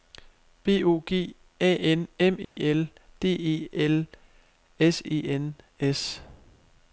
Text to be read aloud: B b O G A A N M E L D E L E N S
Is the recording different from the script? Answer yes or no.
yes